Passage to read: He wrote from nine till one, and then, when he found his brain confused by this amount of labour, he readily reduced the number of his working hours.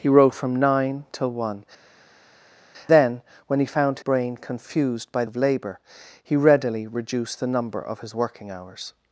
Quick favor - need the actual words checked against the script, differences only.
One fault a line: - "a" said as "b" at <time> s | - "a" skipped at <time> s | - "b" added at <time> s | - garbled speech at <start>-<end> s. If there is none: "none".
- "and" skipped at 1.6 s
- "his" skipped at 4.0 s
- "this amount" skipped at 5.2 s